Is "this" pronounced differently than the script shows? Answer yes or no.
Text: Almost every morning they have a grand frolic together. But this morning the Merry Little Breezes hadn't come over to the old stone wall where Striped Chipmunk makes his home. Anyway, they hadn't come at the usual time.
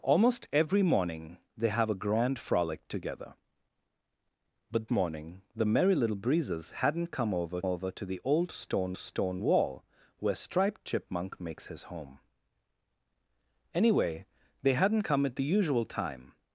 yes